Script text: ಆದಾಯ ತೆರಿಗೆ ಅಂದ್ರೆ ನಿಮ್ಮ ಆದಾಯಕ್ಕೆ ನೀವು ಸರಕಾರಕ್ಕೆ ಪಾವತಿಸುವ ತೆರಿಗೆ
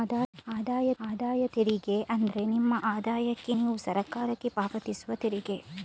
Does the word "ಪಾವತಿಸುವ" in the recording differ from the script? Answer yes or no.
no